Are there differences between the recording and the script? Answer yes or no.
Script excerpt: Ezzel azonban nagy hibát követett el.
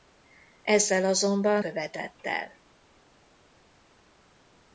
yes